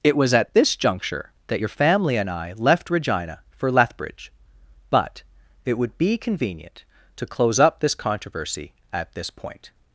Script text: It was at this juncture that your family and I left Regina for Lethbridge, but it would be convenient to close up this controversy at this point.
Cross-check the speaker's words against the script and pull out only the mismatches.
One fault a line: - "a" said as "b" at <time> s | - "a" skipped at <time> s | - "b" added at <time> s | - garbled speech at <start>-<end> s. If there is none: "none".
none